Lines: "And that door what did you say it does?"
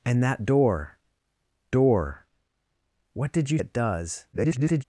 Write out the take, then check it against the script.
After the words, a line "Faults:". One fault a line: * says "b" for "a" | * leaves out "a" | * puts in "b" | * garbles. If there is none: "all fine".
"And that door door what did you it does?" [garbled]
Faults:
* puts in "door"
* leaves out "say"
* garbles